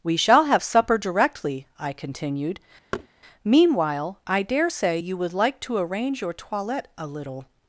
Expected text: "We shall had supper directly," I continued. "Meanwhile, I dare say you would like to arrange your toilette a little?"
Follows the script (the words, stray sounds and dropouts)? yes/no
no